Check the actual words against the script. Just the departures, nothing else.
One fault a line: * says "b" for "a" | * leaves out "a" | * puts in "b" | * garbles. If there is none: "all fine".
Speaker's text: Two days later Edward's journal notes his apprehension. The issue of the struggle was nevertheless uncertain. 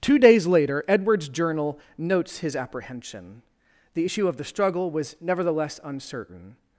all fine